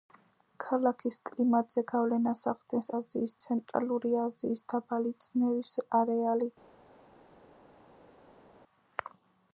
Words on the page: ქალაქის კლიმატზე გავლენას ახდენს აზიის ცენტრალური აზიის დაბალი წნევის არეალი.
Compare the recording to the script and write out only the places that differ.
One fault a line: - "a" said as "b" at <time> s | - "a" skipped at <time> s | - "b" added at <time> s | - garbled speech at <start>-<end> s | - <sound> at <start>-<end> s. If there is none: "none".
none